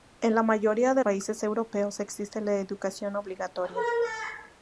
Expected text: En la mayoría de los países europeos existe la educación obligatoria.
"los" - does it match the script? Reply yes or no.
no